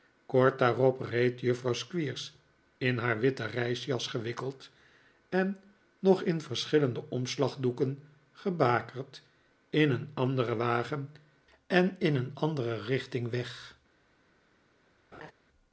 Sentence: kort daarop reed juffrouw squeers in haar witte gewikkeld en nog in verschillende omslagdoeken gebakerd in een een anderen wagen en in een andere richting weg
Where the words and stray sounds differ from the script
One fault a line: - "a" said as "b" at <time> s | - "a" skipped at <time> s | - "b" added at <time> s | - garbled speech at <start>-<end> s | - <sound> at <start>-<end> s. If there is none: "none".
- "reisjas" added at 3.5 s
- "een" skipped at 10.1 s
- laugh at 15.1-15.3 s